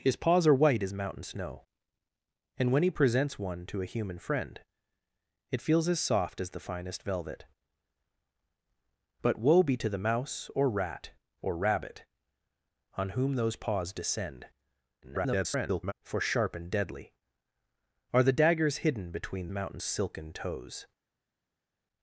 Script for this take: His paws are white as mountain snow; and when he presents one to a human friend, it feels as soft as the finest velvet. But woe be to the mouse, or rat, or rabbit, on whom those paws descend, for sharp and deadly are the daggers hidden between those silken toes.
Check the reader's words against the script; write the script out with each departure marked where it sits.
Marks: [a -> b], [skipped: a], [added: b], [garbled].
His paws are white as mountain snow; and when he presents one to a human friend, it feels as soft as the finest velvet. But woe be to the mouse, or rat, or rabbit, on whom those paws descend, [garbled] for sharp and deadly are the daggers hidden between [those -> mountain] silken toes.